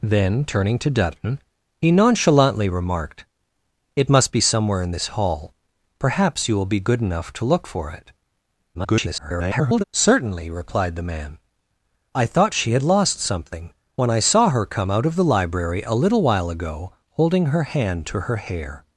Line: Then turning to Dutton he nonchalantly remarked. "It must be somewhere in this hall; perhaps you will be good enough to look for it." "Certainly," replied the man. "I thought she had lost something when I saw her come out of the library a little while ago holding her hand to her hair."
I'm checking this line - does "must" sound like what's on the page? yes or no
yes